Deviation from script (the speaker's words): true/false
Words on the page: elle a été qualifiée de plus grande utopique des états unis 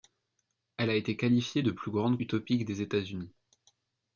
false